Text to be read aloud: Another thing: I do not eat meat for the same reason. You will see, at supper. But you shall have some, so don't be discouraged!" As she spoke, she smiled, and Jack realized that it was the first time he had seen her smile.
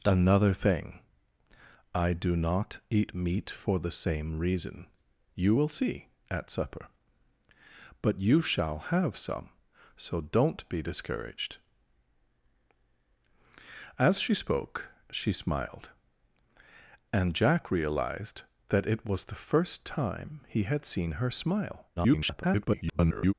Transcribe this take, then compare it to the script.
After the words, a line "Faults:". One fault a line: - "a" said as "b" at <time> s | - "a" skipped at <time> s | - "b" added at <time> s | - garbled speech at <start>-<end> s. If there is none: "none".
Another thing: I do not eat meat for the same reason. You will see, at supper. But you shall have some, so don't be discouraged!" As she spoke, she smiled, and Jack realized that it was the first time he had seen her smile. [garbled]
Faults:
- garbled speech at 22.0-23.3 s